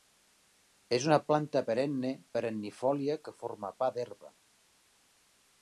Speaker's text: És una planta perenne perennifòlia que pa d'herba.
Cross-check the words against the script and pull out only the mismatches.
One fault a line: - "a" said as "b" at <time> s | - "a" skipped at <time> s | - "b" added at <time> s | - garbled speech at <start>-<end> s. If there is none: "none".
- "forma" added at 3.4 s